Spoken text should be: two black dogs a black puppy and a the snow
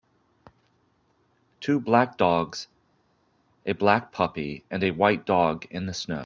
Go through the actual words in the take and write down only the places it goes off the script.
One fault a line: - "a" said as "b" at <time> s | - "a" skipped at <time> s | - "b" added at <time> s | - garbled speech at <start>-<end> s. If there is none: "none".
- "white dog in" added at 4.9 s